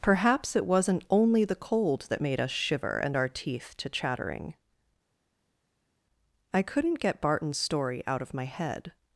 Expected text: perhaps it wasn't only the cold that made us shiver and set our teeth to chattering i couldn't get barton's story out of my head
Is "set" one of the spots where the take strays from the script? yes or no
yes